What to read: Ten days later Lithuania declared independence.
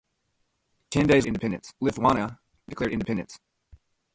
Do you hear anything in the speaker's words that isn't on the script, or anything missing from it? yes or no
yes